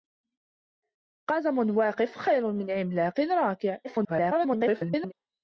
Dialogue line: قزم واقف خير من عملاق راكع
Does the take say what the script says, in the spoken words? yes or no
no